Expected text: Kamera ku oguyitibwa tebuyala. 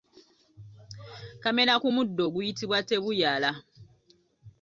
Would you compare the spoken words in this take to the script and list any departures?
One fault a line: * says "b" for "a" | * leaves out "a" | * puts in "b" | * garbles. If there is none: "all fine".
* puts in "muddo"